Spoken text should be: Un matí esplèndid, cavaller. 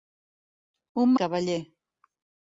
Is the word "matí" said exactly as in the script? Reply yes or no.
no